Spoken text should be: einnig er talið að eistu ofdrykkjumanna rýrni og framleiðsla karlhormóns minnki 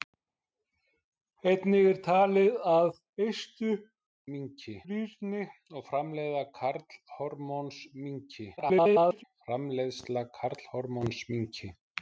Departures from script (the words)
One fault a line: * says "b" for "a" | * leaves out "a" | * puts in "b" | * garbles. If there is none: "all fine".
* says "minnki" for "ofdrykkjumanna"
* garbles